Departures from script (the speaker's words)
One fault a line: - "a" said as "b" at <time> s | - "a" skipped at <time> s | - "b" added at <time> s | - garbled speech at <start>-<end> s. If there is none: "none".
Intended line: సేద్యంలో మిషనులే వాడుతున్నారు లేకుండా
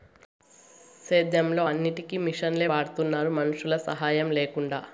- "అన్నిటికీ" added at 1.6 s
- "మనుషుల సాహాయం" added at 3.3 s